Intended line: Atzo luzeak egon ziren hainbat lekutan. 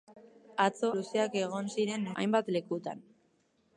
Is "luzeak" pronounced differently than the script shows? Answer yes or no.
no